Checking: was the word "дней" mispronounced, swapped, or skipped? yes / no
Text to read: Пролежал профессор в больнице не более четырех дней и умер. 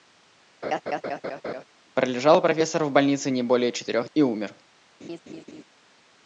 yes